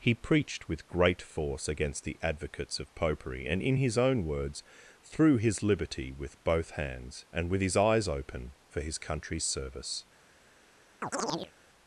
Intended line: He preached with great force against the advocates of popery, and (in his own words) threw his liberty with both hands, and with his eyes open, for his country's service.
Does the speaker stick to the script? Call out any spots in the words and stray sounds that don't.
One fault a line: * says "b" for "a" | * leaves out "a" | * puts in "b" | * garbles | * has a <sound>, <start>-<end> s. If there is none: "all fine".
* has a chirp, 11.0-11.5 s